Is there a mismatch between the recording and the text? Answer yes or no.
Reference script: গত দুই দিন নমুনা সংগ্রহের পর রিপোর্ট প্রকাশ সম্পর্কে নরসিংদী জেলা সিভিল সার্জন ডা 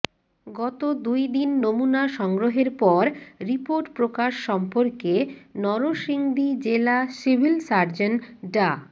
no